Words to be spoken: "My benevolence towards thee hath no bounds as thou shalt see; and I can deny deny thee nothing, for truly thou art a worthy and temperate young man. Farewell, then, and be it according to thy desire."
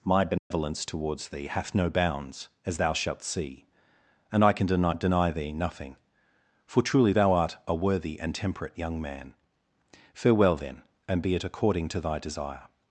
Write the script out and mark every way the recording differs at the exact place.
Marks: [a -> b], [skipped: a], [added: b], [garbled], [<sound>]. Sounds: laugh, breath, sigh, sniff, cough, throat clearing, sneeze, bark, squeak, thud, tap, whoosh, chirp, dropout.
"My benevolence [dropout] towards thee hath no bounds as thou shalt see; and I can deny deny thee nothing, for truly thou art a worthy and temperate young man. Farewell, then, and be it according to thy desire."